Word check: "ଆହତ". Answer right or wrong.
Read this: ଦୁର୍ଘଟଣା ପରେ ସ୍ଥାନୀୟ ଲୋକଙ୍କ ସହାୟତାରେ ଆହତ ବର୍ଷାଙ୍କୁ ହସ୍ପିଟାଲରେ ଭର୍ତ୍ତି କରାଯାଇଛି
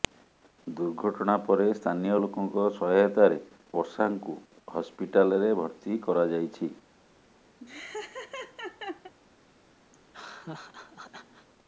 wrong